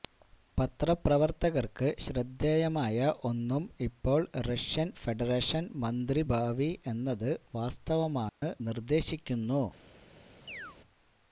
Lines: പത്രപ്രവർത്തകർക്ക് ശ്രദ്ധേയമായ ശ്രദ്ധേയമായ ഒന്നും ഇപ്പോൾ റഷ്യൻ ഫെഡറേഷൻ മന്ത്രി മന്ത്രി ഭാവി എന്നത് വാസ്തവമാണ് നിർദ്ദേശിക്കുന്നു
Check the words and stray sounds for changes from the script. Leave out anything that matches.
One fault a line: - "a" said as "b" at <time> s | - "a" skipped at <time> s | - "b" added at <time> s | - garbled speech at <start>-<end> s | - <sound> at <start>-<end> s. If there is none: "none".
- "ശ്രദ്ധേയമായ" skipped at 3.0 s
- "മന്ത്രി" skipped at 6.2 s
- dropout at 8.3-8.4 s
- chirp at 10.5-10.8 s